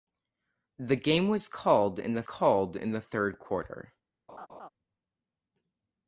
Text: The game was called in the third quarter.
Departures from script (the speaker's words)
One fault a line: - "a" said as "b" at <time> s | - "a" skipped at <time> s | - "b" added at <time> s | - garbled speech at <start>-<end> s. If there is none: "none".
- "called in the" added at 2.2 s